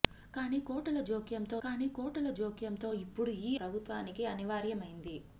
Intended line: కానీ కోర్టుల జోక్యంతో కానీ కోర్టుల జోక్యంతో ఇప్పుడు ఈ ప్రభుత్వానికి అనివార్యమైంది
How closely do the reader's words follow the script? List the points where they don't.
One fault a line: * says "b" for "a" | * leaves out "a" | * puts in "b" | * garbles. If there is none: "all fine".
all fine